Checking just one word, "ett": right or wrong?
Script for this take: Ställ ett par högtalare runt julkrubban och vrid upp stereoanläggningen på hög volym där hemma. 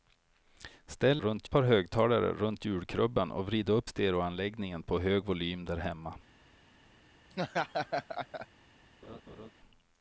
wrong